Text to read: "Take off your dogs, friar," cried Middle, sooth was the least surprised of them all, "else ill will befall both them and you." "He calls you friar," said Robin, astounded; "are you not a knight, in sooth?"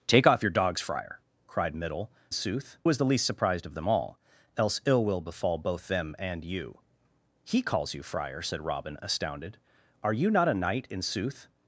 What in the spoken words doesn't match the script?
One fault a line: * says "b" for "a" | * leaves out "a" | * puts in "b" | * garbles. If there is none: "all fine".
all fine